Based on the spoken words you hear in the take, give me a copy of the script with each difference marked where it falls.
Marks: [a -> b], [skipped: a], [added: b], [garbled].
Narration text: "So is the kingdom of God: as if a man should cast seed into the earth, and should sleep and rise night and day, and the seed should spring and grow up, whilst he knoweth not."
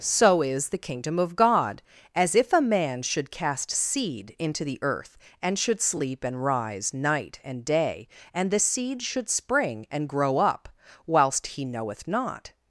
"So is the kingdom of God: as if a man should cast seed into the earth, and should sleep and rise night and day, and the seed should spring and grow up, whilst he knoweth not."